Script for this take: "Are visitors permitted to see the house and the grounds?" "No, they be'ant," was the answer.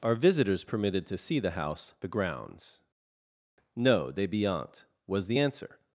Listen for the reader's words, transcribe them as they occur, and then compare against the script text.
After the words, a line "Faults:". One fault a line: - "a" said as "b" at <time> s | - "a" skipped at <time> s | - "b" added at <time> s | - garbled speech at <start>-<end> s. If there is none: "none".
"Are visitors permitted to see the house the grounds?" "No, they be'ant," was the answer.
Faults:
- "and" skipped at 1.9 s